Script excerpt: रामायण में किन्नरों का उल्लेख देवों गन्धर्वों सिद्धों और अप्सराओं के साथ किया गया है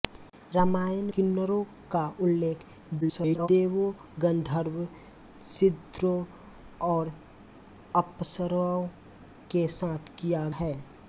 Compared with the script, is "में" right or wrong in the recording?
wrong